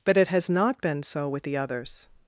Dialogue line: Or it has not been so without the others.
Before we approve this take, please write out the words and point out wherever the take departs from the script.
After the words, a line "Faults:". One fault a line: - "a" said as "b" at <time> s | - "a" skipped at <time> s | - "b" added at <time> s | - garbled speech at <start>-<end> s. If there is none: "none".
But it has not been so with the others.
Faults:
- "Or" said as "But" at 0.1 s
- "without" said as "with" at 1.3 s